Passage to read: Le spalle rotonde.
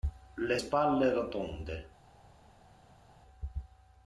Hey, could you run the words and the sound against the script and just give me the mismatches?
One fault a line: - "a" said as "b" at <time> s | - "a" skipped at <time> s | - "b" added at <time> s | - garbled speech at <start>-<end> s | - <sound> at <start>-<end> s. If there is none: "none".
none